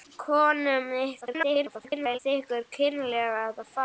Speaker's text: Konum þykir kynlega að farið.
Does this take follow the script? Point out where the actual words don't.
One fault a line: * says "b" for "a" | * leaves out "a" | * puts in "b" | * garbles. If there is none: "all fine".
* garbles